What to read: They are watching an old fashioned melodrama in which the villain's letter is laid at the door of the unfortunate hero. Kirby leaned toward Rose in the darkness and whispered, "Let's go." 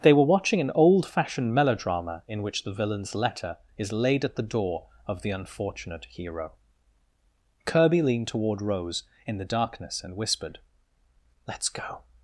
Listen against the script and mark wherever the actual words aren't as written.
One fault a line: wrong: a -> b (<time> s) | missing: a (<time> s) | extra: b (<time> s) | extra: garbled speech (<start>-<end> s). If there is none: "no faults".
wrong: are -> were (0.1 s)